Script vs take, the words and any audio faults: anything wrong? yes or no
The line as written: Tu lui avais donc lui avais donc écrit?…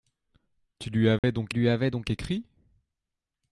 yes